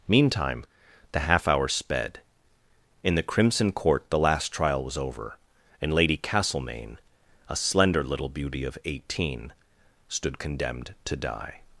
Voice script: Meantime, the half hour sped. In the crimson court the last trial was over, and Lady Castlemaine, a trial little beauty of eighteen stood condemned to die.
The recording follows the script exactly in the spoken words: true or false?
false